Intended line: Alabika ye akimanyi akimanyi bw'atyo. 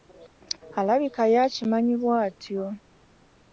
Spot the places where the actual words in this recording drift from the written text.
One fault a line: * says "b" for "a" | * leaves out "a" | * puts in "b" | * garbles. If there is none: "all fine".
* leaves out "akimanyi"